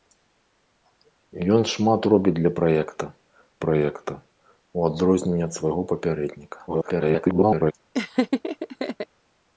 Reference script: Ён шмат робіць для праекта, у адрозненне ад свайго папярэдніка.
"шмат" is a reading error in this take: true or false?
false